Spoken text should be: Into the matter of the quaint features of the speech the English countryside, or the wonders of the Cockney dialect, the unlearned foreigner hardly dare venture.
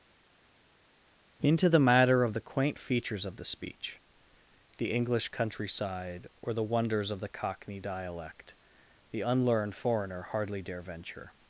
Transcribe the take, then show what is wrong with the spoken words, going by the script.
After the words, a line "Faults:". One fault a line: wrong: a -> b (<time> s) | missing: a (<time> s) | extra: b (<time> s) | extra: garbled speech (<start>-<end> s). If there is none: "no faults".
Into the matter of the quaint features of the speech the English countryside, or the wonders of the Cockney dialect, the unlearned foreigner hardly dare venture.
Faults:
no faults